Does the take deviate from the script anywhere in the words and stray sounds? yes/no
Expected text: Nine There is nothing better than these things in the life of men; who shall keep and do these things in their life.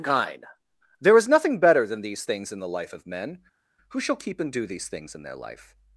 yes